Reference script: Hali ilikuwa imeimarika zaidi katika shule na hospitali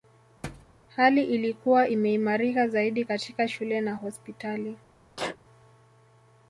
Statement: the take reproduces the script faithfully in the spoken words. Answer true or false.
true